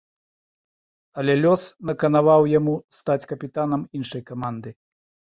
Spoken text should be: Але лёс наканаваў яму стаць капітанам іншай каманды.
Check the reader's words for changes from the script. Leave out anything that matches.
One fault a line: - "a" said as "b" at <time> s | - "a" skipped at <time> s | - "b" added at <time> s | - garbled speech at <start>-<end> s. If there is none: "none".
none